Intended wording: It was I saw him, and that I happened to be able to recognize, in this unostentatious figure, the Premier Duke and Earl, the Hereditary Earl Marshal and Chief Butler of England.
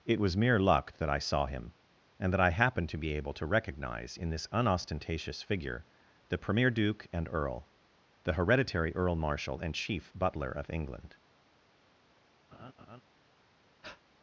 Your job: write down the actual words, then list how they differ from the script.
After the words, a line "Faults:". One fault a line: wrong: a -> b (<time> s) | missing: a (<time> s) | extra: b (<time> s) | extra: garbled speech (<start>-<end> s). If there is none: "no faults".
It was mere luck that I saw him, and that I happened to be able to recognize, in this unostentatious figure, the Premier Duke and Earl, the Hereditary Earl Marshal and Chief Butler of England.
Faults:
extra: mere luck that (0.3 s)